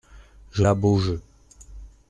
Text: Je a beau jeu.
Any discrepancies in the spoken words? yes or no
no